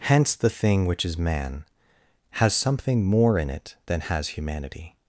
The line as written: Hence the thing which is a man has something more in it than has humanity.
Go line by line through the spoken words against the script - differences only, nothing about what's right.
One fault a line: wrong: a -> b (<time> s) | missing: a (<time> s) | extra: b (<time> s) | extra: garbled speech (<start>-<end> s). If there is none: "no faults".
missing: a (1.2 s)